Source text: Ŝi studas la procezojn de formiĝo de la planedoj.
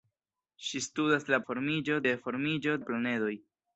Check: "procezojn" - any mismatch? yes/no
yes